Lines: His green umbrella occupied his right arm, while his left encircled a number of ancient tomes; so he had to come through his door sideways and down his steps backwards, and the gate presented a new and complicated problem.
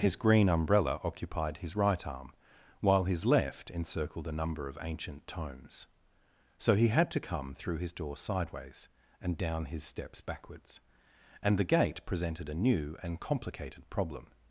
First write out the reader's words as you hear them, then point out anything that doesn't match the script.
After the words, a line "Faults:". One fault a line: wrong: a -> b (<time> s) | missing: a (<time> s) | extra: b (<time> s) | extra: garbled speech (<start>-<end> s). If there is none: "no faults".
His green umbrella occupied his right arm, while his left encircled a number of ancient tomes; so he had to come through his door sideways and down his steps backwards, and the gate presented a new and complicated problem.
Faults:
no faults